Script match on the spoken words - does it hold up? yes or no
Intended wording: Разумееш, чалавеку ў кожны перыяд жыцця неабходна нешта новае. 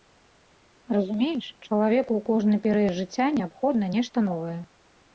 yes